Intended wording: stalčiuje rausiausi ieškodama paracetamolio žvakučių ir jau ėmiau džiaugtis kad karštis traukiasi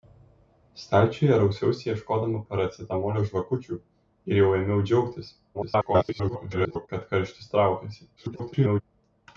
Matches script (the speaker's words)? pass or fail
fail